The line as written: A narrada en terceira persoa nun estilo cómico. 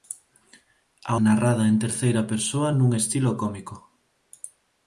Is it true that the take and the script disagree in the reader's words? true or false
false